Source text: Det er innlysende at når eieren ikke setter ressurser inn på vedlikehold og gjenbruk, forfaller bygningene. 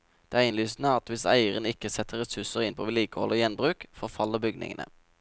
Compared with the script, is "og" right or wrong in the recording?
right